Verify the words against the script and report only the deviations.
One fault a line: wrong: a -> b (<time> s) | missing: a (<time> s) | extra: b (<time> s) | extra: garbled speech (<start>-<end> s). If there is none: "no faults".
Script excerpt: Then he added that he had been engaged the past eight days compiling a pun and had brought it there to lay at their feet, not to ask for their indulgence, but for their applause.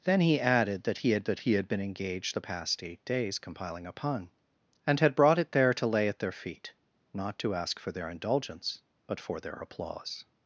extra: that he had (1.2 s)